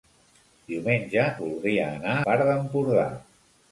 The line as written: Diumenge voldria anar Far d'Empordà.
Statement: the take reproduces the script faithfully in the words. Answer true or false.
true